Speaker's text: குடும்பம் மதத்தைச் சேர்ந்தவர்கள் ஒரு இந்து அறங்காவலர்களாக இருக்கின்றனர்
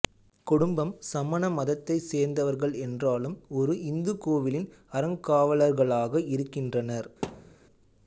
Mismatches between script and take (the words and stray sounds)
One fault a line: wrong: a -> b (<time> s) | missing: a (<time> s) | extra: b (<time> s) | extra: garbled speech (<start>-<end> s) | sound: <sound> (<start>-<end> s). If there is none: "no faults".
extra: சமண (1.1 s)
extra: என்றாலும் (2.9 s)
extra: கோவிலின் (4.2 s)
sound: thud (7.2-7.6 s)